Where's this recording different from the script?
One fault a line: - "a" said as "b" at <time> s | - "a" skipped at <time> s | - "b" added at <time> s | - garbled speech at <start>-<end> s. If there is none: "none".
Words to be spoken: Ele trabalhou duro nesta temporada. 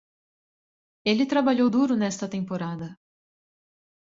none